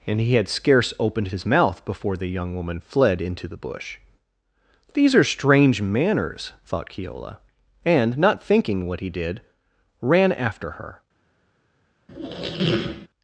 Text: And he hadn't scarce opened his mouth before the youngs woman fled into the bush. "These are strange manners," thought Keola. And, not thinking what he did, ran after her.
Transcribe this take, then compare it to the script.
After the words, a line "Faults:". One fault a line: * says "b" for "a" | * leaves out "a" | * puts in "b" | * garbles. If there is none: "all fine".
And he had scarce opened his mouth before the young woman fled into the bush. "These are strange manners," thought Keola. And, not thinking what he did, ran after her.
Faults:
* says "had" for "hadn't"
* says "young" for "youngs"